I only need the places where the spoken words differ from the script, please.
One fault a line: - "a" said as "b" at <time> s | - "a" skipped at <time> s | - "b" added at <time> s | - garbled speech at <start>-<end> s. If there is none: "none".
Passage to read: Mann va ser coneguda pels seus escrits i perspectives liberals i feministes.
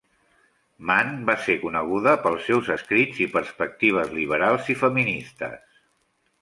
none